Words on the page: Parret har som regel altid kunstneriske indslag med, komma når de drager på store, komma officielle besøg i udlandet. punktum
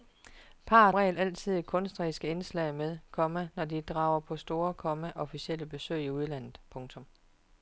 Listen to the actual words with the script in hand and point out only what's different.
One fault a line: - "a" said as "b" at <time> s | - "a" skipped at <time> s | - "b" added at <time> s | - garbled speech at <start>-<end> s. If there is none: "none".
- "har som" skipped at 0.9 s